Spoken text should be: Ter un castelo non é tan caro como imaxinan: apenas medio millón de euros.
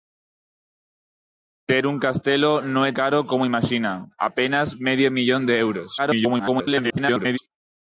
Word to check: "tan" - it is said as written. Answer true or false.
false